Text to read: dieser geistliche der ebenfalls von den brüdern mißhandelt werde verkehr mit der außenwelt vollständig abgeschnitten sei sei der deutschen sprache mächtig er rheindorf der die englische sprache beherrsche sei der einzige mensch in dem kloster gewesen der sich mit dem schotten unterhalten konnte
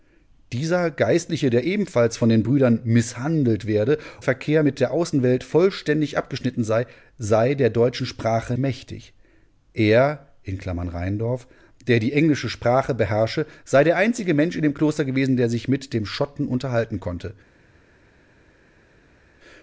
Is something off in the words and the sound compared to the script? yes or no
no